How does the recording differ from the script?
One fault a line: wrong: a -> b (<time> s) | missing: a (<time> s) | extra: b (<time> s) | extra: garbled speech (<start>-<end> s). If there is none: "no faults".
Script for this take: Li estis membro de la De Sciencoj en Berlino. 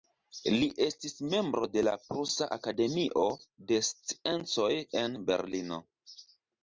extra: Prusa Akademio (2.1 s)